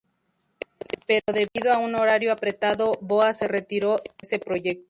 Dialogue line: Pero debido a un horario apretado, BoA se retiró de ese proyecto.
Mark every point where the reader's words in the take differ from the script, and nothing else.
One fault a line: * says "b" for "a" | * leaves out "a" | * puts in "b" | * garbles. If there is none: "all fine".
* leaves out "de"